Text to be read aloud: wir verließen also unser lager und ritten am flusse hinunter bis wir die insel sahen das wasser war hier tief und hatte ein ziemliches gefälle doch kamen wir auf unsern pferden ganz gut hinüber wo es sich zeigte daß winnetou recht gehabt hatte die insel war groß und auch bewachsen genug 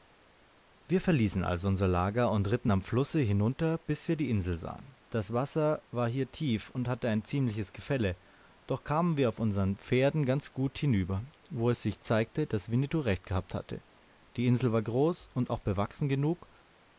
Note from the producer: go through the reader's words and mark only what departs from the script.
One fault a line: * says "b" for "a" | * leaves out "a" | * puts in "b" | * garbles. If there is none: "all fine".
all fine